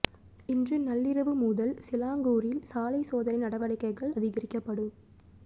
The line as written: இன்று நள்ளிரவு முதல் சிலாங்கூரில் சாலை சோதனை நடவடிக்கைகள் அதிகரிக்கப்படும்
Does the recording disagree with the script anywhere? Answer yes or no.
no